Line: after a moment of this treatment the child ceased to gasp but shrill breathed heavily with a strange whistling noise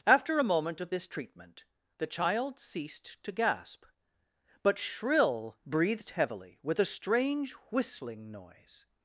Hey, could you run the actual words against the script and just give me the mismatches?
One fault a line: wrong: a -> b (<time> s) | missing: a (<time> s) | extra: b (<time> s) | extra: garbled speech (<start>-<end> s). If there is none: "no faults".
no faults